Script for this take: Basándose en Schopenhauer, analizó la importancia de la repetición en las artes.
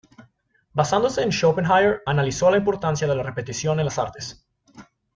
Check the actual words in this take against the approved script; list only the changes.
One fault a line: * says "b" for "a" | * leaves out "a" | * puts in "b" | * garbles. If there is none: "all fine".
all fine